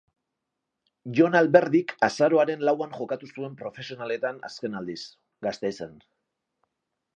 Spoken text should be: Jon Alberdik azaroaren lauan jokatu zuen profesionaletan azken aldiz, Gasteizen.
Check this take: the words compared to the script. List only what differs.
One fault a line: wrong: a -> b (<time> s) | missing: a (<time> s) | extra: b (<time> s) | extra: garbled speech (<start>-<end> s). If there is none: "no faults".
no faults